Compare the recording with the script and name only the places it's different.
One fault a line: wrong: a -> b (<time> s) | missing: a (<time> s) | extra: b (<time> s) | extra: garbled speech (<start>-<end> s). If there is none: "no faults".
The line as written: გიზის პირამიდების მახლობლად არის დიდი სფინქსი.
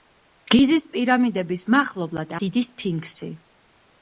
missing: არის (2.4 s)